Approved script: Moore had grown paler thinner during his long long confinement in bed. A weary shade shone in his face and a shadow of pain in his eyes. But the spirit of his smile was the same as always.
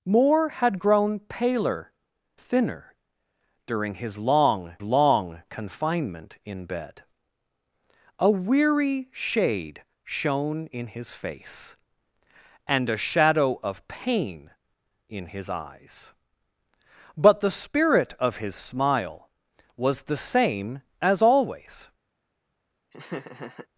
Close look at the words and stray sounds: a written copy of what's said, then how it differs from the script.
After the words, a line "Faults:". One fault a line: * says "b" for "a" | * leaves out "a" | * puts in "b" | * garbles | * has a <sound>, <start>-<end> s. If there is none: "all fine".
Moore had grown paler thinner during his long long confinement in bed. A weary shade shone in his face and a shadow of pain in his eyes. But the spirit of his smile was the same as always.
Faults:
* has a laugh, 22.9-23.7 s